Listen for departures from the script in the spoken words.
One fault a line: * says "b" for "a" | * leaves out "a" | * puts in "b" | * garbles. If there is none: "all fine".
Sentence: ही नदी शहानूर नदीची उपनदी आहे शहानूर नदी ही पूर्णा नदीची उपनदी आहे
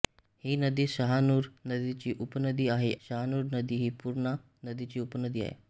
all fine